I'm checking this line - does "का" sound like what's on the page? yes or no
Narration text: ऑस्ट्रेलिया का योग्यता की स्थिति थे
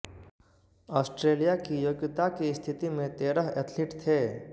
no